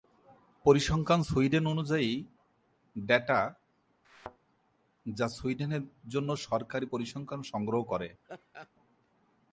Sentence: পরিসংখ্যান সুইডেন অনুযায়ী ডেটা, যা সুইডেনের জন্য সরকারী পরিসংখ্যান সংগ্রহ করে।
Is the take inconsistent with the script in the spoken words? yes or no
no